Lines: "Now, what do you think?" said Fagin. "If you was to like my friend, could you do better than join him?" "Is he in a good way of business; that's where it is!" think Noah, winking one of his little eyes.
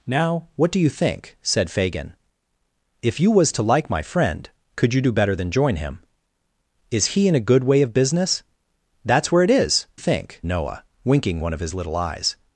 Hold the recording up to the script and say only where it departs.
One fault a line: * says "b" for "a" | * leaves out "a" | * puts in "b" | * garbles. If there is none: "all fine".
all fine